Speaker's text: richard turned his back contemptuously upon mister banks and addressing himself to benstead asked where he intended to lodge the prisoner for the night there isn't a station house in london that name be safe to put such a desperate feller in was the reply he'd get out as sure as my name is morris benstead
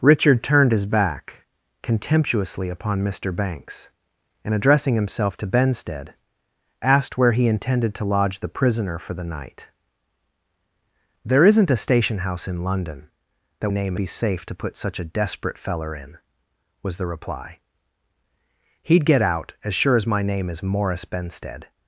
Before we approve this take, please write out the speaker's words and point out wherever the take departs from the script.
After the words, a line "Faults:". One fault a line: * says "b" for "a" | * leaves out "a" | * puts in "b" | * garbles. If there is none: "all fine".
richard turned his back contemptuously upon mister banks and addressing himself to benstead asked where he intended to lodge the prisoner for the night there isn't a station house in london that name be safe to put such a desperate feller in was the reply he'd get out as sure as my name is morris benstead
Faults:
all fine